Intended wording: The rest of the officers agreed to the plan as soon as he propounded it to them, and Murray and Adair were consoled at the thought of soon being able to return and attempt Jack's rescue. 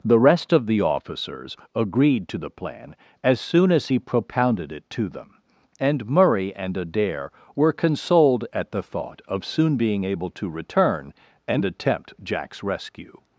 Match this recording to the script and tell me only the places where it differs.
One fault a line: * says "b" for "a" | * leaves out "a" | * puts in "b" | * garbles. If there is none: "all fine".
all fine